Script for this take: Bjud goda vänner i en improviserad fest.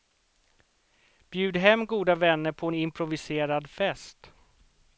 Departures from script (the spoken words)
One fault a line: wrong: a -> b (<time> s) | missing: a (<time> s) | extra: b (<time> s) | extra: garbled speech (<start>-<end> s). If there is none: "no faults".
extra: hem (1.6 s)
wrong: i -> på (2.5 s)